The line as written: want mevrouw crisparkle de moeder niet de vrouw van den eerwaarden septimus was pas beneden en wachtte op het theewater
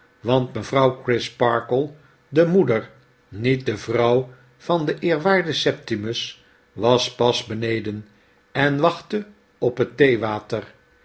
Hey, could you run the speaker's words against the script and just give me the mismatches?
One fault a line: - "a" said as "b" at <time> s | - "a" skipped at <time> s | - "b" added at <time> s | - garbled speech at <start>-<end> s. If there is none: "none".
none